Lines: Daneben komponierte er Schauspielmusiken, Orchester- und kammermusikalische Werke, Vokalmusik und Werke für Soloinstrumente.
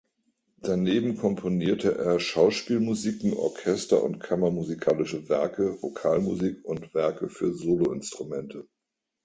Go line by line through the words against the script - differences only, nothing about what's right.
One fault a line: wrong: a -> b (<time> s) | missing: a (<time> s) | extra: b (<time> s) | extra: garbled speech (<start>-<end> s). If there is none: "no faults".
no faults